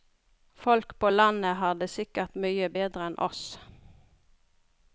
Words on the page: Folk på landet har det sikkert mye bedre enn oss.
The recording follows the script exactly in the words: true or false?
true